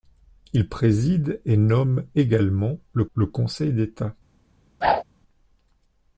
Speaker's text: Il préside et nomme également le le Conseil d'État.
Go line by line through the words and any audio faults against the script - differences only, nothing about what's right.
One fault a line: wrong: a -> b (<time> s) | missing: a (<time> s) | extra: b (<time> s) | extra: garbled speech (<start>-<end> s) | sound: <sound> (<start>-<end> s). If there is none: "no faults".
sound: whoosh (4.8-5.0 s)